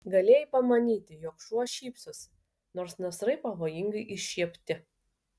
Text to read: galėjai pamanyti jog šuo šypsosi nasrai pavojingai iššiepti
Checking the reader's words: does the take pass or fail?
fail